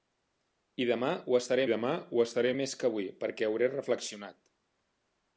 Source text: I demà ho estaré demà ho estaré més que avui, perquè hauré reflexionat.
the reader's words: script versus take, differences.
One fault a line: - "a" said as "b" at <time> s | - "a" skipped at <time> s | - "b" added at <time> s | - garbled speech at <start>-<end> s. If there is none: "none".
none